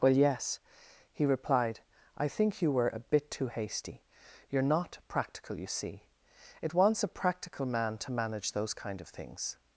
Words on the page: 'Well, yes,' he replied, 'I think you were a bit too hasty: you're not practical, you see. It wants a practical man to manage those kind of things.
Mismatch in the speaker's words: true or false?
false